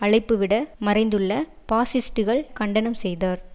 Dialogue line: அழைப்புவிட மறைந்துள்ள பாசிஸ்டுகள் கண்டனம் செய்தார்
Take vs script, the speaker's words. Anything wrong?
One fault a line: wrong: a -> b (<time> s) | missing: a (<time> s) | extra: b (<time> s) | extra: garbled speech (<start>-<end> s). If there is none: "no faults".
no faults